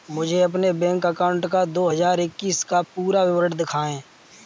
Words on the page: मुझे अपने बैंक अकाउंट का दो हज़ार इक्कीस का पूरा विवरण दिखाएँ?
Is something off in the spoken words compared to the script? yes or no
no